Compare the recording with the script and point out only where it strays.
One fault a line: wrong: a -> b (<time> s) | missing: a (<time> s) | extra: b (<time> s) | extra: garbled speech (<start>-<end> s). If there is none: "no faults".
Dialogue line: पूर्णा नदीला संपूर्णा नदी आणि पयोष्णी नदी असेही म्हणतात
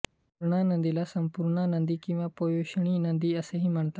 wrong: आणि -> किंवा (2.0 s)